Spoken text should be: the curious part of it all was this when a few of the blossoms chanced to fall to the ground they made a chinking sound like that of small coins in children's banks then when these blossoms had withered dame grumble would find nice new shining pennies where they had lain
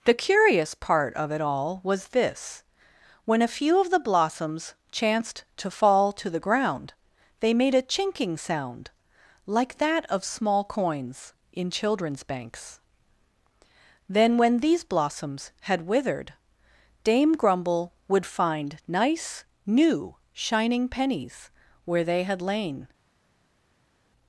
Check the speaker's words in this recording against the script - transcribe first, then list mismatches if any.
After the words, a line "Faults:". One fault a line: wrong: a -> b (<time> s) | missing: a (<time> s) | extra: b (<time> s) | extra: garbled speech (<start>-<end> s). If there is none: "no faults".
the curious part of it all was this when a few of the blossoms chanced to fall to the ground they made a chinking sound like that of small coins in children's banks then when these blossoms had withered dame grumble would find nice new shining pennies where they had lain
Faults:
no faults